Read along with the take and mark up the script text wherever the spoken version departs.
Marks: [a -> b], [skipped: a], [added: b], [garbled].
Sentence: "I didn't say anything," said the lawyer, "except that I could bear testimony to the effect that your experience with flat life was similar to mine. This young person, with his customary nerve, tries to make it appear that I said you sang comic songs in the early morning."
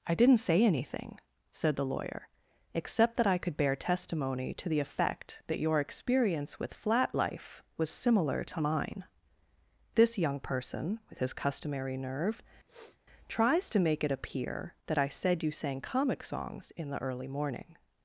"I didn't say anything," said the lawyer, "except that I could bear testimony to the effect that your experience with flat life was similar to mine. This young person, with his customary nerve, tries to make it appear that I said you sang comic songs in the early morning."